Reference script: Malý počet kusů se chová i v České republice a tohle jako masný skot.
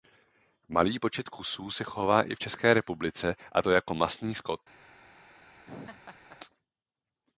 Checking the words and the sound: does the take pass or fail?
fail